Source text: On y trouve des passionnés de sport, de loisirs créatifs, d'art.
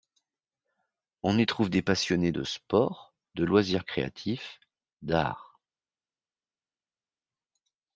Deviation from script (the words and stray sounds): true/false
false